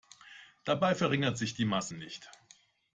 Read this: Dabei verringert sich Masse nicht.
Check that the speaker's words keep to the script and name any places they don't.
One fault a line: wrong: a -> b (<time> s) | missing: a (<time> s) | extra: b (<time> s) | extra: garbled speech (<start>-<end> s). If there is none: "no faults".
extra: die (1.5 s)